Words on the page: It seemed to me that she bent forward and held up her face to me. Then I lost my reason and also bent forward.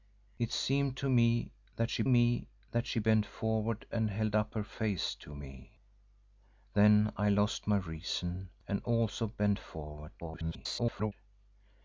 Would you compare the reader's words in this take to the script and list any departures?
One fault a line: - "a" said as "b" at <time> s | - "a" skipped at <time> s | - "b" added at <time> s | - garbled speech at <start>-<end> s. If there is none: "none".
- "me that she" added at 2.1 s
- garbled speech at 10.2-11.1 s